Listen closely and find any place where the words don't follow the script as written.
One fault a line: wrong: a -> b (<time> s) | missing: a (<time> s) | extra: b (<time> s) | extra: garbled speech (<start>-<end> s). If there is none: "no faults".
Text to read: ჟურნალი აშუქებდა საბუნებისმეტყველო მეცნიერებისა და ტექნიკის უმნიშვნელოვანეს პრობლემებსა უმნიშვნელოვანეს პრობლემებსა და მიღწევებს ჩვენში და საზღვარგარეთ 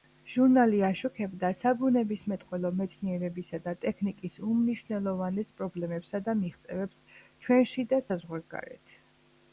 missing: უმნიშვნელოვანეს პრობლემებსა (6.3 s)